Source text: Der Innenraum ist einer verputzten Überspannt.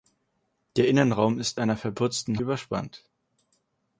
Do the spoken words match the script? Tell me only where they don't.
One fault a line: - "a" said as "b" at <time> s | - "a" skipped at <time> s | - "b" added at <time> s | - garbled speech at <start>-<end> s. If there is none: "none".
none